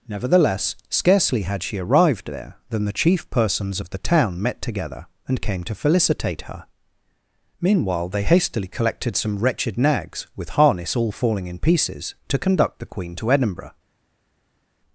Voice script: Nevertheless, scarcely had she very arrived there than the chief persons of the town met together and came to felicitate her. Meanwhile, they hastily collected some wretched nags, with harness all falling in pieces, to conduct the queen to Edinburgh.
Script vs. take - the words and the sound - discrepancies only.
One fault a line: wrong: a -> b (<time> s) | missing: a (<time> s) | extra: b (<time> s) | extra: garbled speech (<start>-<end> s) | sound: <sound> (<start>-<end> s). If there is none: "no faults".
missing: very (1.8 s)